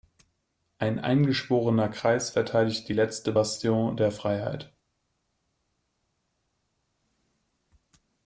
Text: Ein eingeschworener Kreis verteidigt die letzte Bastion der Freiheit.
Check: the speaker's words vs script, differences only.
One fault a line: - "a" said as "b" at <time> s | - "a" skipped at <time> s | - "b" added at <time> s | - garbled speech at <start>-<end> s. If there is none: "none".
none